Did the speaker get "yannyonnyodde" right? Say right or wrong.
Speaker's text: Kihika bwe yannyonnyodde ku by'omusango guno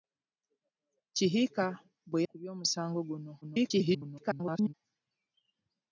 wrong